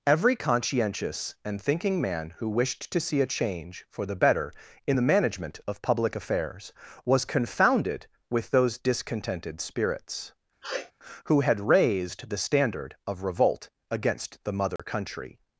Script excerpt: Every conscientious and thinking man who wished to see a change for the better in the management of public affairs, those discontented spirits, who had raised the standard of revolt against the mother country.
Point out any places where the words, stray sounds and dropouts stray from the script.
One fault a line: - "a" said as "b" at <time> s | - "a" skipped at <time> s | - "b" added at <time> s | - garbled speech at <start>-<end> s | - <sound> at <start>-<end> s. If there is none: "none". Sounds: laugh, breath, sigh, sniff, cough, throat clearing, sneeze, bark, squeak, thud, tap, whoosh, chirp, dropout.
- "was confounded with" added at 7.0 s
- sniff at 10.6-10.9 s
- dropout at 14.8-14.8 s